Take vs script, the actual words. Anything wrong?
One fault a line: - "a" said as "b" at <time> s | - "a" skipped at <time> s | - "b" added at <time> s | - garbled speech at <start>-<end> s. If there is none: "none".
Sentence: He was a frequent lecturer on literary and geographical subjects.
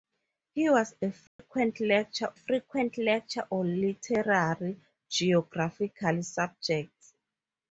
- "frequent lecturer" added at 2.3 s
- "and" skipped at 4.8 s